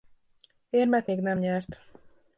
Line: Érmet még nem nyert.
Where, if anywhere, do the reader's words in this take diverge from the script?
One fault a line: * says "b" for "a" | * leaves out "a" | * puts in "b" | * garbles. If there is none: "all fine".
all fine